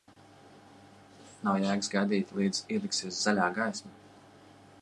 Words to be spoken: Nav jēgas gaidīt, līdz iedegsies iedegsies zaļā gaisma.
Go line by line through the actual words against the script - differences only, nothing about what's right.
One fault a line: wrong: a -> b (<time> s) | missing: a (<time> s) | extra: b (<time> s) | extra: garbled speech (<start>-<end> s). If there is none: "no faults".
missing: iedegsies (3.2 s)